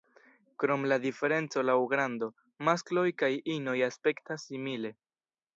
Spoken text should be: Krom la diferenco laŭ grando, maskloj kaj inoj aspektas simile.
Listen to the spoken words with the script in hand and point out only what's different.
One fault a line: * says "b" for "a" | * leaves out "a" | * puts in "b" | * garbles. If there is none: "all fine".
all fine